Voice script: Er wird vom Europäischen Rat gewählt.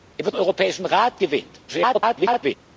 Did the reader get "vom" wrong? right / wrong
wrong